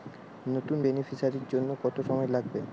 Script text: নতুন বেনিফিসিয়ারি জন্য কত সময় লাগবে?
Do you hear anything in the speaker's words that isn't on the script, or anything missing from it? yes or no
no